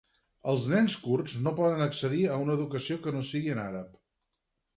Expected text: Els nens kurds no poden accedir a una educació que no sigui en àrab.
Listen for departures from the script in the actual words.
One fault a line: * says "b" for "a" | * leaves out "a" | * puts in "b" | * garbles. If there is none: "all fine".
all fine